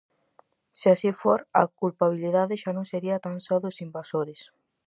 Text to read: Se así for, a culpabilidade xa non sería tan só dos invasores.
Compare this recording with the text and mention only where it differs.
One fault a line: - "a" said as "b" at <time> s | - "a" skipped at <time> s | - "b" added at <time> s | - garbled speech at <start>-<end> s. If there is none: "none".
none